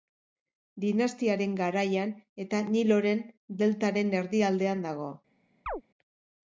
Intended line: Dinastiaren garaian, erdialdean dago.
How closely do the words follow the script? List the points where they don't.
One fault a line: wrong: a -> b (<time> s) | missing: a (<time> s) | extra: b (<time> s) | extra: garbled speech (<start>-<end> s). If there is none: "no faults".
extra: eta Niloren deltaren (2.5 s)